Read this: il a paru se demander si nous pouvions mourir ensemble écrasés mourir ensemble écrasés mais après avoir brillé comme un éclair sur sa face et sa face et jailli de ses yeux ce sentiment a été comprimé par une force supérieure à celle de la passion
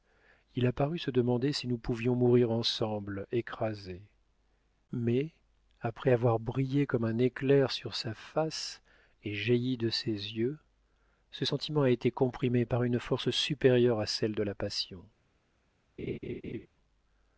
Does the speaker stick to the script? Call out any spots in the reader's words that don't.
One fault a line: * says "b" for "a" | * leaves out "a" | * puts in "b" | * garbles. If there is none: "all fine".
* leaves out "mourir ensemble écrasés"
* leaves out "sa face et"